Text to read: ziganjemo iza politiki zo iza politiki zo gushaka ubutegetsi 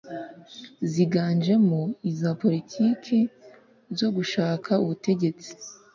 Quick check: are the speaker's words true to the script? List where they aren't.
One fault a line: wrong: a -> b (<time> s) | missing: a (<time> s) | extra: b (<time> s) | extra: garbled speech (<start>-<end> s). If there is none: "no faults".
missing: iza politiki zo (4.1 s)